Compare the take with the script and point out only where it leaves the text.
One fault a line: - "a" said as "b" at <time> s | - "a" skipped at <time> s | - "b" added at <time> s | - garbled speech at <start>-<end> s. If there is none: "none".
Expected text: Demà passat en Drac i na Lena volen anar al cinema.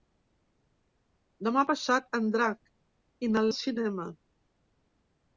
- "Lena volen anar" skipped at 3.5 s